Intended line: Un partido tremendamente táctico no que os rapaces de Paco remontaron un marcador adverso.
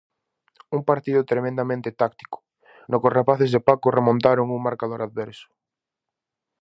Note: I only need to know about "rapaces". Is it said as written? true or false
true